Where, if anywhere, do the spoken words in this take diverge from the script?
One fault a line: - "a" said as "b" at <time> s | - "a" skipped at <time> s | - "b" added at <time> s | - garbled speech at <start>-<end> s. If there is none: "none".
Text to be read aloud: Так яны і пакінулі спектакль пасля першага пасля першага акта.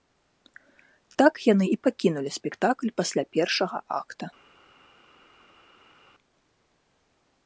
- "пасля першага" skipped at 3.8 s